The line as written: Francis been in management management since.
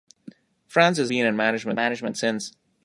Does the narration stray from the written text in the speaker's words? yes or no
no